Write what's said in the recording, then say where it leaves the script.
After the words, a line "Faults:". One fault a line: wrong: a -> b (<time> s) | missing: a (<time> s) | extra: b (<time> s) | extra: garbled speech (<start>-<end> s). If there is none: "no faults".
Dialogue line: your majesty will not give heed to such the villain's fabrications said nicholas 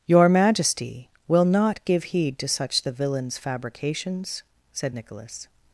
your majesty will not give heed to such the villain's fabrications said nicholas
Faults:
no faults